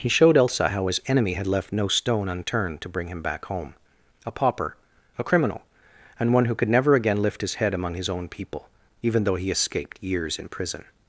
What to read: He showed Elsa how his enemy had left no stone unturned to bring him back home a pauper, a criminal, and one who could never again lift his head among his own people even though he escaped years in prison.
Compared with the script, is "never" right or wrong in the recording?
right